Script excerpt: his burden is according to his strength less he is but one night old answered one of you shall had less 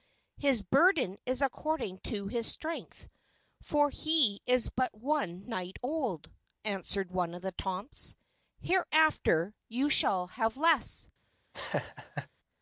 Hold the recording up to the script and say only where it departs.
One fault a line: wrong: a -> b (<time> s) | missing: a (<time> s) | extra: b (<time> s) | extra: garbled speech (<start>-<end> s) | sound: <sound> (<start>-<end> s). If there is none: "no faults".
wrong: less -> for (3.6 s)
extra: the tomts hereafter (7.4 s)
wrong: had -> have (10.3 s)
sound: laugh (11.5-12.3 s)